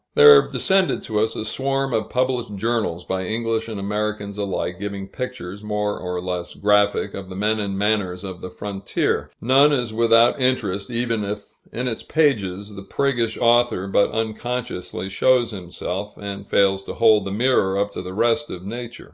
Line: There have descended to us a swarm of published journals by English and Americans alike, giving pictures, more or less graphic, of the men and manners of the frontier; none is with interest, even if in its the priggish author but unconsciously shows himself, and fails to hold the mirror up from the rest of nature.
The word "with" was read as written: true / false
false